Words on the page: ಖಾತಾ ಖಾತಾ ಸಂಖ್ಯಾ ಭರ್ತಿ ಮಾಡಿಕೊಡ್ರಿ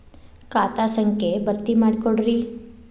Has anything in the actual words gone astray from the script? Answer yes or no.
yes